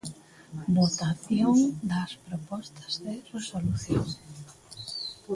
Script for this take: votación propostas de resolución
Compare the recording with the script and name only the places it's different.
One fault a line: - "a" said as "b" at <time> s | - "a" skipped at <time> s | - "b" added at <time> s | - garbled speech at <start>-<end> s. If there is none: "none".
- "das" added at 1.9 s